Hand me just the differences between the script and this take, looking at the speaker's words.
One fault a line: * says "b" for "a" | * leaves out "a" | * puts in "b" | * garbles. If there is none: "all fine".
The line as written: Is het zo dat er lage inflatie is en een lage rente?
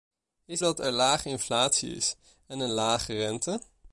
* leaves out "het zo"